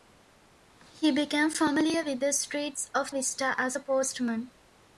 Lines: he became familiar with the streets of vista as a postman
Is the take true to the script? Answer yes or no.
yes